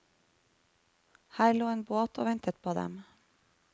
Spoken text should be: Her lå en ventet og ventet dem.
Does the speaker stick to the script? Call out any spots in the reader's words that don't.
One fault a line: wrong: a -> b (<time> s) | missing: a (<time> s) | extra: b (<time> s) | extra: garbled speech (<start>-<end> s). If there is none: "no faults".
wrong: ventet -> båt (1.8 s)
extra: på (2.6 s)